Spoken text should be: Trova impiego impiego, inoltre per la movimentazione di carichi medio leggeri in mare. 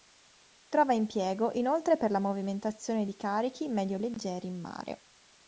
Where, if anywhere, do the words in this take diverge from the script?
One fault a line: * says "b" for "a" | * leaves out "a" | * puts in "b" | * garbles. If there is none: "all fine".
* leaves out "impiego"